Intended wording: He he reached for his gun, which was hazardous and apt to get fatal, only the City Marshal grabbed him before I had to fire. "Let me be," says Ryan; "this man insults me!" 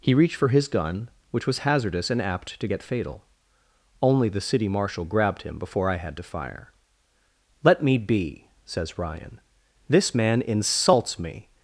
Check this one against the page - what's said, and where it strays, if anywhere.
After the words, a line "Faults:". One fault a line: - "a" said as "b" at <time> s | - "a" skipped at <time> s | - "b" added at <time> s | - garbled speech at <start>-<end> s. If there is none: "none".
He reached for his gun, which was hazardous and apt to get fatal, only the City Marshal grabbed him before I had to fire. "Let me be," says Ryan; "this man insults me!"
Faults:
- "he" skipped at 0.1 s